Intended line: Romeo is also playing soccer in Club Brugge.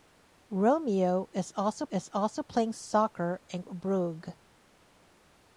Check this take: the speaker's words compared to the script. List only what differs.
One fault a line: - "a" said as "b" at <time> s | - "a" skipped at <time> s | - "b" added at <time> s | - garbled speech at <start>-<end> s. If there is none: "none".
- "is also" added at 1.9 s
- "Club" skipped at 3.6 s